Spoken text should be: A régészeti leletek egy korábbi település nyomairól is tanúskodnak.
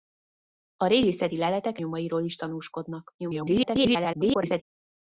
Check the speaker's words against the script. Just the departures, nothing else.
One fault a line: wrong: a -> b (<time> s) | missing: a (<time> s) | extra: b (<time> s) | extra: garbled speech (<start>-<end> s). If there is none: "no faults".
missing: egy korábbi település (1.8 s)
extra: garbled speech (3.2-4.6 s)